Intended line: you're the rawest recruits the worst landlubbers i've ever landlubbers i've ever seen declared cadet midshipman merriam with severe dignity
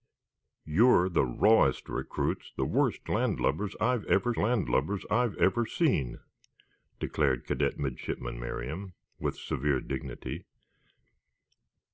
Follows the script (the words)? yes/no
yes